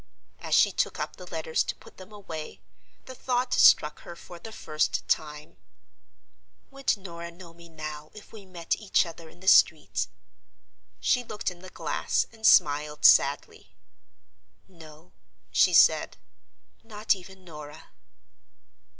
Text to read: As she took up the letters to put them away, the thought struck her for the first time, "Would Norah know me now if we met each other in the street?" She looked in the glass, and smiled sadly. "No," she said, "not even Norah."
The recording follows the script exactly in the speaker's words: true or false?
true